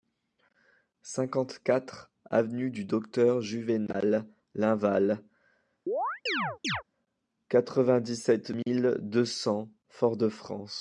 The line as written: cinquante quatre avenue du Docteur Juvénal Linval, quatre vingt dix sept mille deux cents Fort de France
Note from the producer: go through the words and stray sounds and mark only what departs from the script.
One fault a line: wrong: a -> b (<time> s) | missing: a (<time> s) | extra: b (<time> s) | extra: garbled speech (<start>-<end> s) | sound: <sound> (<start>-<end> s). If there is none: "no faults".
sound: chirp (5.9-6.8 s)